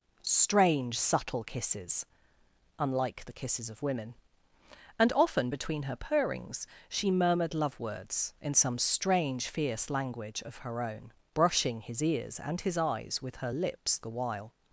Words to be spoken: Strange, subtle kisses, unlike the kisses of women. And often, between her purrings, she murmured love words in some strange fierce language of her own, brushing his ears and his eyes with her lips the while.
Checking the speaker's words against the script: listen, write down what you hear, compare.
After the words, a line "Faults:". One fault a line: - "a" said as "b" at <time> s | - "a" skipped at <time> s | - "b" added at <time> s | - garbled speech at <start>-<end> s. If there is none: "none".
Strange, subtle kisses, unlike the kisses of women. And often, between her purrings, she murmured love words in some strange fierce language of her own, brushing his ears and his eyes with her lips the while.
Faults:
none